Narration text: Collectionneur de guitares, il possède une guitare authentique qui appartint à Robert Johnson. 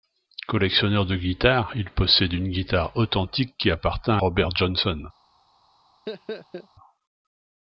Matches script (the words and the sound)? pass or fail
fail